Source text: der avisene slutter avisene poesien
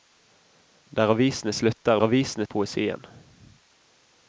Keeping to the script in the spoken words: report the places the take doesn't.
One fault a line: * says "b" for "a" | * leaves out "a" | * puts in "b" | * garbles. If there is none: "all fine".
all fine